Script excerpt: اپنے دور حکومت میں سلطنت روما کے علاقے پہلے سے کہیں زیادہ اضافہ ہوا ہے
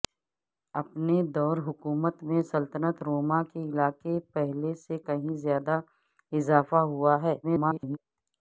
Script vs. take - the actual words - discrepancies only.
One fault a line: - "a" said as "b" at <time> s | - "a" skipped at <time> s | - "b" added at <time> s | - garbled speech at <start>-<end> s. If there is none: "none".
- garbled speech at 7.4-8.0 s